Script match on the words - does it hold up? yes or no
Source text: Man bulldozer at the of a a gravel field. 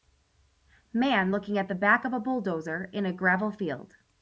no